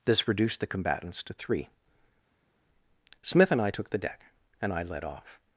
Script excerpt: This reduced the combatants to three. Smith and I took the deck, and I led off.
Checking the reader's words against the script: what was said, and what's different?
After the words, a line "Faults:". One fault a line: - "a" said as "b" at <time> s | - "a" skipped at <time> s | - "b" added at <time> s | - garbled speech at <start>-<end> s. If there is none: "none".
This reduced the combatants to three. Smith and I took the deck, and I led off.
Faults:
none